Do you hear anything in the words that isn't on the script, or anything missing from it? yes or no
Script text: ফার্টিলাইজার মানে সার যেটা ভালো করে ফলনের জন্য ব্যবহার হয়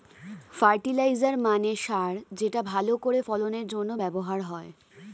no